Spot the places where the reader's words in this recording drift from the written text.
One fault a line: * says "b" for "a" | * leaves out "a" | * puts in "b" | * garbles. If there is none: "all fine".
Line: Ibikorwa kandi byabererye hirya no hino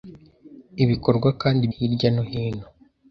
* leaves out "byabererye"